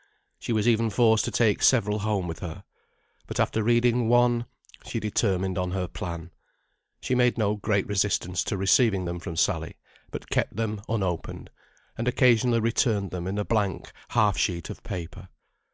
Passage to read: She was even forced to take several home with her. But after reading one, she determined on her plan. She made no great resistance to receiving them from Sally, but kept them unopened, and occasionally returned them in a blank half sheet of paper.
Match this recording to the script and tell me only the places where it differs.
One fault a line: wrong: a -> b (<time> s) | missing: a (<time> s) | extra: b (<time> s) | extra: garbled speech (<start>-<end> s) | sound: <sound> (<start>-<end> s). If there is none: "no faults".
no faults